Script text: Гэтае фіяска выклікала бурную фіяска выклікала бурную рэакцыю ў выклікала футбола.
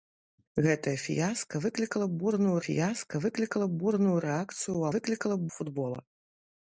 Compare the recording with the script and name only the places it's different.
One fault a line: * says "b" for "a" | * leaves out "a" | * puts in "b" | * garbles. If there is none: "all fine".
all fine